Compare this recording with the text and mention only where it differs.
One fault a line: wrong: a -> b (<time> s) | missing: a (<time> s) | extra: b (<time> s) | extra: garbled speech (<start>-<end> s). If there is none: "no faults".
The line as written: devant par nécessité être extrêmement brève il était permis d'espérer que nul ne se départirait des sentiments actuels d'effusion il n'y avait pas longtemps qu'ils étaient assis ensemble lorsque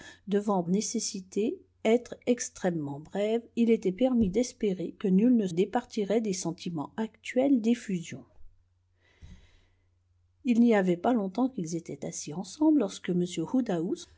missing: par (0.6 s)
missing: se (5.5 s)